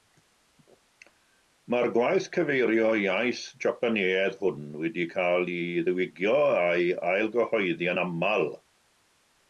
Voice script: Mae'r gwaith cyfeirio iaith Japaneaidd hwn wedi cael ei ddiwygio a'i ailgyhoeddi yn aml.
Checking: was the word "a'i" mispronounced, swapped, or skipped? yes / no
no